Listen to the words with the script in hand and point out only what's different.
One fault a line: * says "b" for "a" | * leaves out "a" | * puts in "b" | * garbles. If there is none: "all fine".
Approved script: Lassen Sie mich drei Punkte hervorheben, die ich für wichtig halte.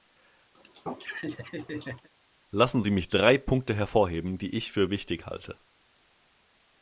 all fine